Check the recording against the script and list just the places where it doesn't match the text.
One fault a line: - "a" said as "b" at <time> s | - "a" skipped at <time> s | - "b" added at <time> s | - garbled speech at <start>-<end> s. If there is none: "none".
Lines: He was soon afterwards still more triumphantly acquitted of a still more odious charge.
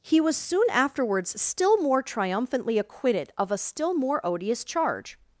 none